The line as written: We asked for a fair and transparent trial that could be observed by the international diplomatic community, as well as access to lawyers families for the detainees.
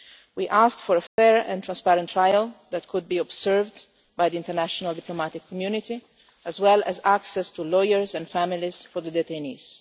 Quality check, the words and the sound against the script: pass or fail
fail